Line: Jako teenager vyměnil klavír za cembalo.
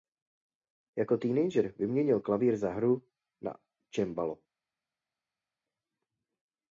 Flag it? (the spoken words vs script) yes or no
yes